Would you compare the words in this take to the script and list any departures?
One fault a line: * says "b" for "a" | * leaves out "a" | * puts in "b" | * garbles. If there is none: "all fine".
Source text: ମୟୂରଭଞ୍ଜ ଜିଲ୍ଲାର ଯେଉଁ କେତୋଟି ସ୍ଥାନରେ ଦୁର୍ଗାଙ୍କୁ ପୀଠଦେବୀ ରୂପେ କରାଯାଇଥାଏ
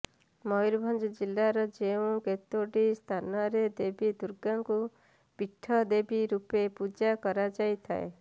* puts in "ଦେବୀ"
* puts in "ପୂଜା"